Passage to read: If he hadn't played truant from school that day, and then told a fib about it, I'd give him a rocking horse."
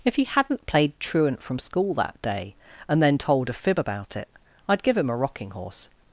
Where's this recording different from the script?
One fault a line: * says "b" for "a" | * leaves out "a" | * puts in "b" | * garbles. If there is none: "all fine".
all fine